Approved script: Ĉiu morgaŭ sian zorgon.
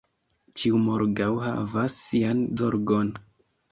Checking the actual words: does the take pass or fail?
fail